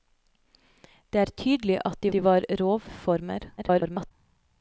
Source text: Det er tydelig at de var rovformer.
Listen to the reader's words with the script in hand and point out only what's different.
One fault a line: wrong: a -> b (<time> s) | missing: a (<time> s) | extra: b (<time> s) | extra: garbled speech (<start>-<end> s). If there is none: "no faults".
extra: de (2.1 s)
extra: garbled speech (3.6-4.1 s)